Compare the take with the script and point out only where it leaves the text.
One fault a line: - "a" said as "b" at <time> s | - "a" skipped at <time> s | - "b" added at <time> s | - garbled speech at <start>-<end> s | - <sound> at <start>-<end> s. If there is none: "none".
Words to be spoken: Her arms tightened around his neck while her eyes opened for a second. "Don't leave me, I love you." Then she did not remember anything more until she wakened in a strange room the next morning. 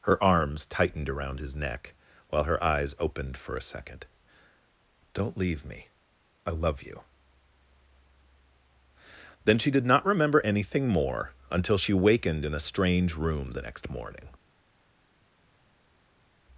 none